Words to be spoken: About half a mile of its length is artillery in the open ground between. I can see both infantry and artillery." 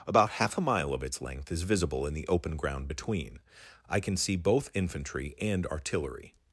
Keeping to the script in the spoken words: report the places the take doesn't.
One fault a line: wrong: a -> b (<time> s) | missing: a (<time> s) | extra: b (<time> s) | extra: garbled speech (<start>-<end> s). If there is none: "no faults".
wrong: artillery -> visible (1.6 s)